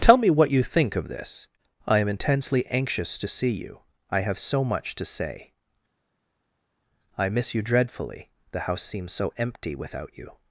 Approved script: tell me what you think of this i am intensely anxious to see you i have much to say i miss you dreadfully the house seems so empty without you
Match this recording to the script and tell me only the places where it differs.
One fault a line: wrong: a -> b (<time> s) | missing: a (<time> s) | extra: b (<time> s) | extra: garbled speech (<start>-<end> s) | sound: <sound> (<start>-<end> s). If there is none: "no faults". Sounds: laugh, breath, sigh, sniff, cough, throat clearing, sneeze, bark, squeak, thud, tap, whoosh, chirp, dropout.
extra: so (4.4 s)